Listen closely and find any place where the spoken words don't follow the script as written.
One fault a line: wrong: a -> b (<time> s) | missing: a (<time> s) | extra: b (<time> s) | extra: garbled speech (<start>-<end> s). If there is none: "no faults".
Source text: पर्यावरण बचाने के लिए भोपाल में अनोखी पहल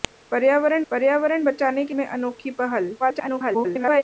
extra: पर्यावरण (0.9 s)
missing: लिए भोपाल (2.0 s)
extra: garbled speech (3.0-4.0 s)